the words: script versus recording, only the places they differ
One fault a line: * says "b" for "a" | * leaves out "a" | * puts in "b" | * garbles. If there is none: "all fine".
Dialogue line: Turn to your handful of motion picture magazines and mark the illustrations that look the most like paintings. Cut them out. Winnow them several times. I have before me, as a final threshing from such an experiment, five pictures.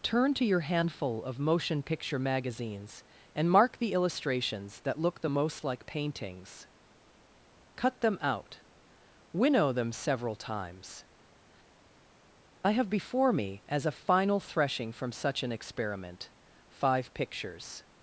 all fine